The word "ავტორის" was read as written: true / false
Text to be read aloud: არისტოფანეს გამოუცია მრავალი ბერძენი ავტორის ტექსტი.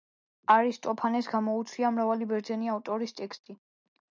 true